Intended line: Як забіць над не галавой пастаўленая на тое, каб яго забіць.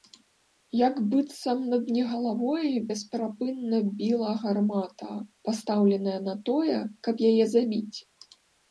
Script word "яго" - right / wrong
wrong